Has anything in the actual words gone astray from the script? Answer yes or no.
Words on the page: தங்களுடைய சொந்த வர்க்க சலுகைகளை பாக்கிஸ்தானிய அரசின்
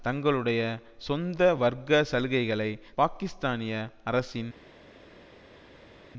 no